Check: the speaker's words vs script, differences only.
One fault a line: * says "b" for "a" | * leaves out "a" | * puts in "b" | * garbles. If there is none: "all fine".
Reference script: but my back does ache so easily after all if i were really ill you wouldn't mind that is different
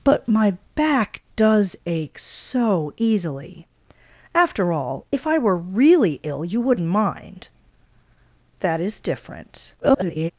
* garbles